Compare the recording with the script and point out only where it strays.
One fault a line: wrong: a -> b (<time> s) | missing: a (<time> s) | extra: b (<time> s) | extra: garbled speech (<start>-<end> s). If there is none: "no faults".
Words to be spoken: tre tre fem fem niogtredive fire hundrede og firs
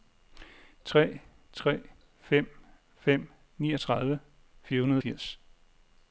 no faults